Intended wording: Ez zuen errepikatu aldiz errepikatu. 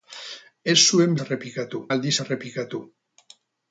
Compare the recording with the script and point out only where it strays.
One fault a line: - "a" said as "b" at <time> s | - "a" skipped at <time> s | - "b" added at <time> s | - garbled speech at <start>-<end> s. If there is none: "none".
none